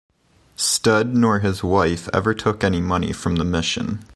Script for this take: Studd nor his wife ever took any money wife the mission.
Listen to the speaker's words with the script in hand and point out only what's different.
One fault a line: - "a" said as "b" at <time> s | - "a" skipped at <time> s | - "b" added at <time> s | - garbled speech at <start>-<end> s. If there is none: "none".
- "wife" said as "from" at 3.1 s